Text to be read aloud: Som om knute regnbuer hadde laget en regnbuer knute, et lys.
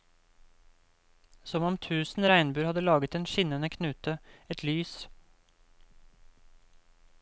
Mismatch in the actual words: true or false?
true